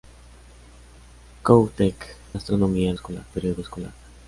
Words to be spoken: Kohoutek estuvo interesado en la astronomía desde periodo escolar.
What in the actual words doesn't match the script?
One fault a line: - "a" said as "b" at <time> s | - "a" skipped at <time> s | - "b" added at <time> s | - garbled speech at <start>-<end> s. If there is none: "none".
- "estuvo interesado en" skipped at 2.1 s
- "desde" said as "escolar" at 2.9 s